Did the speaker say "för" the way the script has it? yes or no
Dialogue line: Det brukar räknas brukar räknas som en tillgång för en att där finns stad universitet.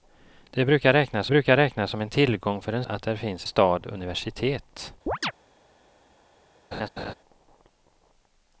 yes